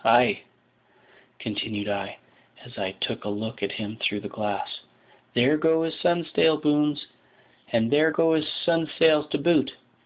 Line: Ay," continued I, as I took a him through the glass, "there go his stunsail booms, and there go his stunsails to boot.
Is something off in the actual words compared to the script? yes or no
yes